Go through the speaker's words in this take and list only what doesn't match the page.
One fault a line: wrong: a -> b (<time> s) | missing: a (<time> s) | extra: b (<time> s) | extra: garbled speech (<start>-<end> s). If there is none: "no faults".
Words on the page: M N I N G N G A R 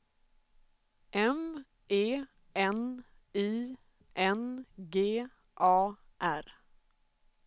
extra: E (1.9 s)
missing: N G (5.2 s)